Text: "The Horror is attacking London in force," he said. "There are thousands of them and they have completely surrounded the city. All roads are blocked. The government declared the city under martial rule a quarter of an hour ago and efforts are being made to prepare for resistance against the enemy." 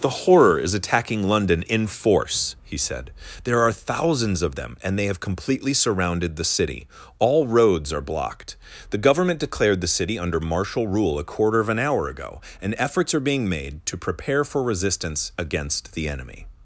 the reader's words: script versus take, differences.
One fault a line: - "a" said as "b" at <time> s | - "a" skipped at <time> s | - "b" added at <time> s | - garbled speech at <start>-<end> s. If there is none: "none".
none